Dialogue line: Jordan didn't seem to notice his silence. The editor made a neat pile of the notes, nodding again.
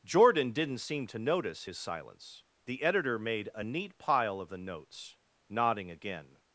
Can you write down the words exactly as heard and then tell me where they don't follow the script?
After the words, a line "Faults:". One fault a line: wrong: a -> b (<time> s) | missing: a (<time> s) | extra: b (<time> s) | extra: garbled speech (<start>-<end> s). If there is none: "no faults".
Jordan didn't seem to notice his silence. The editor made a neat pile of the notes, nodding again.
Faults:
no faults